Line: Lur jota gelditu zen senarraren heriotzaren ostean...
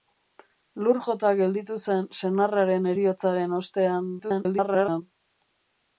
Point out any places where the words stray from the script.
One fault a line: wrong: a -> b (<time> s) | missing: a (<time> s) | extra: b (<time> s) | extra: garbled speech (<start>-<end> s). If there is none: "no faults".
extra: garbled speech (4.2-5.0 s)